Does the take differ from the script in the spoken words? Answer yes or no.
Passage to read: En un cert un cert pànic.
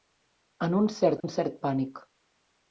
no